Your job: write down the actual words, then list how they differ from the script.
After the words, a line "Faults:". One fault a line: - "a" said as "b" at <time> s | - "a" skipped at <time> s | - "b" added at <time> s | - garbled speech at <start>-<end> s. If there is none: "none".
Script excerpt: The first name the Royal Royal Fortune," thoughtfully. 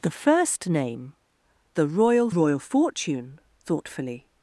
The first name the Royal Royal Fortune," thoughtfully.
Faults:
none